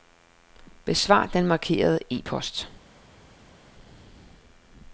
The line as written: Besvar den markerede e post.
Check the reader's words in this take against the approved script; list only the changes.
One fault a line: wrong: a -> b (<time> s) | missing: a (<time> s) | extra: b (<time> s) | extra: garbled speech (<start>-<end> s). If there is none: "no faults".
no faults